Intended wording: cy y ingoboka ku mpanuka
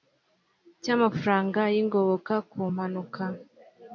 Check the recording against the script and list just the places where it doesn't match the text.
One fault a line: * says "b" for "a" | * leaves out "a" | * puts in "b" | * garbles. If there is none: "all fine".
* puts in "amafaranga"